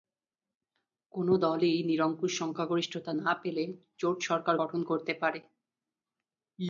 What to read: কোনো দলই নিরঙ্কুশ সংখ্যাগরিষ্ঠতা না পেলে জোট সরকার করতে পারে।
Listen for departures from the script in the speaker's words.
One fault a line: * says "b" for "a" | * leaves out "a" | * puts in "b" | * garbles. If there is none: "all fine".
* puts in "গঠন"